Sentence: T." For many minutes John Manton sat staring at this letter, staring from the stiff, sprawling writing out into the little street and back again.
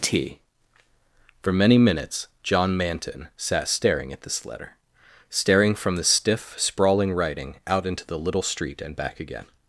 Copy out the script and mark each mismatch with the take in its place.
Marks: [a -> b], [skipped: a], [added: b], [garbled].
T." For many minutes John Manton sat staring at this letter, staring from the stiff, sprawling writing out into the little street and back again.